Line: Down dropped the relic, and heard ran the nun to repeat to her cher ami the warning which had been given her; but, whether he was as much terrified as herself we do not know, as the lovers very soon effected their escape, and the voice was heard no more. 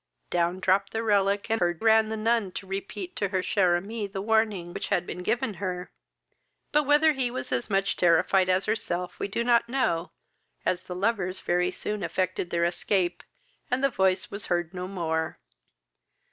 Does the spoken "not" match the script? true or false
true